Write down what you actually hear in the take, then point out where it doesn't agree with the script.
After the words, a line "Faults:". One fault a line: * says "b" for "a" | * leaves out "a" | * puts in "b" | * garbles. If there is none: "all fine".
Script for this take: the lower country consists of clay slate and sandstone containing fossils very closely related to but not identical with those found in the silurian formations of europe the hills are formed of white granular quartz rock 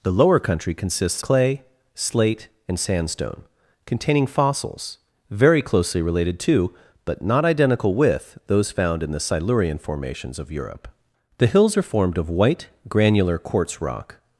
the lower country consists clay slate and sandstone containing fossils very closely related to but not identical with those found in the silurian formations of europe the hills are formed of white granular quartz rock
Faults:
* leaves out "of"